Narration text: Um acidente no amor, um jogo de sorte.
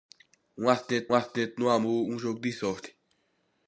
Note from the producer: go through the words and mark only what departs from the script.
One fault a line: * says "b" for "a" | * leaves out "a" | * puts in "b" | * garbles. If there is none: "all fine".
* puts in "acidente"